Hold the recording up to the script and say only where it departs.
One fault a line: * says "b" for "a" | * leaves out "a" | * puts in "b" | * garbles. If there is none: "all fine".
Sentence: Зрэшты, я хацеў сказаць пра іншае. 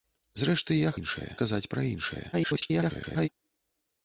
* says "іншае" for "хацеў"
* garbles